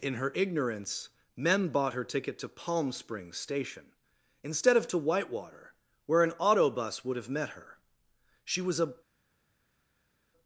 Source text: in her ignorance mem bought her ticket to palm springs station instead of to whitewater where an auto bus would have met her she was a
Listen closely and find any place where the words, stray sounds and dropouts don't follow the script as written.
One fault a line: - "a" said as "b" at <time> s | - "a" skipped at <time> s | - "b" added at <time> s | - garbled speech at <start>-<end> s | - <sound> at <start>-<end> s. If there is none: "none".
none